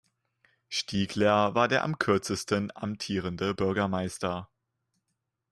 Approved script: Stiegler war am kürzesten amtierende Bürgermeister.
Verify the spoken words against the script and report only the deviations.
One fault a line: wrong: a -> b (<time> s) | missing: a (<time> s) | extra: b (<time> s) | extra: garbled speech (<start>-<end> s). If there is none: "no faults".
extra: der (1.7 s)